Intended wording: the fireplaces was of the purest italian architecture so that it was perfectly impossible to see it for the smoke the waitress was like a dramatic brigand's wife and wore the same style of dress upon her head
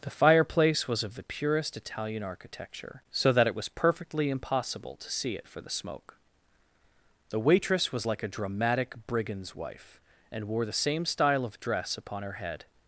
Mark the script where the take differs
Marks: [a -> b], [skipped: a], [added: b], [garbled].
the [fireplaces -> fireplace] was of the purest italian architecture so that it was perfectly impossible to see it for the smoke the waitress was like a dramatic brigand's wife and wore the same style of dress upon her head